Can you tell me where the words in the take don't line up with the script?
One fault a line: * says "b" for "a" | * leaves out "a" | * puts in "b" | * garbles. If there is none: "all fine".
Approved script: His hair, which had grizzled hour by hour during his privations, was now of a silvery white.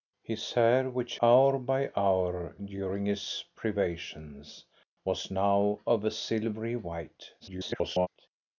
* leaves out "had grizzled"
* garbles